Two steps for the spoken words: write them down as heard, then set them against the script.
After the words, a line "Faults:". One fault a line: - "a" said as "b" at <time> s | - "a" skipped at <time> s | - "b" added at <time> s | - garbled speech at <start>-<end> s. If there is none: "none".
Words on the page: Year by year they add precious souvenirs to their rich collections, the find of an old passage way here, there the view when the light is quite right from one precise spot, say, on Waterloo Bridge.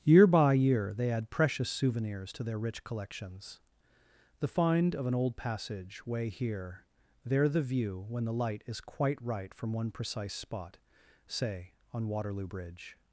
Year by year they add precious souvenirs to their rich collections, the find of an old passage way here, there the view when the light is quite right from one precise spot, say, on Waterloo Bridge.
Faults:
none